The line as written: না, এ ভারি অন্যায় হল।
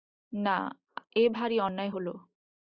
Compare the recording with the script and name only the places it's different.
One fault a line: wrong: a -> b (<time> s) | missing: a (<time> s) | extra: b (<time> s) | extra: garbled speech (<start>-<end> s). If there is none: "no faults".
no faults